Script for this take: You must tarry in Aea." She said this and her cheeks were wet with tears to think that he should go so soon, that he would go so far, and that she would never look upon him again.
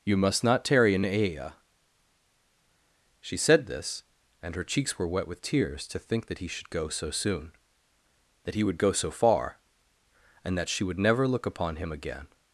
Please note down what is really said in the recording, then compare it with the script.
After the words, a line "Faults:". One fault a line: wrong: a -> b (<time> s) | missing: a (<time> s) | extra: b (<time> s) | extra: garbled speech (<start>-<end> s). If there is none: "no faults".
You must not tarry in Aea." She said this and her cheeks were wet with tears to think that he should go so soon, that he would go so far, and that she would never look upon him again.
Faults:
extra: not (0.4 s)